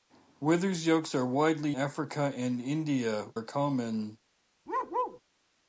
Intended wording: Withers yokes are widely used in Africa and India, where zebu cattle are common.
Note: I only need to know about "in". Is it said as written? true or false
false